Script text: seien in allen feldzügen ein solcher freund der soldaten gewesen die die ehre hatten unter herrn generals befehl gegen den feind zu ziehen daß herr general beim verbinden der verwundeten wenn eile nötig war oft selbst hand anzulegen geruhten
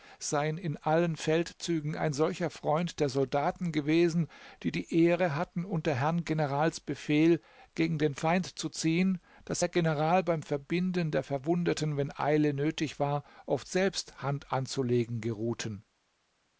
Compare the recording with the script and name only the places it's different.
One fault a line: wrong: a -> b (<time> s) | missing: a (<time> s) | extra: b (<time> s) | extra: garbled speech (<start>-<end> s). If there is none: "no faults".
no faults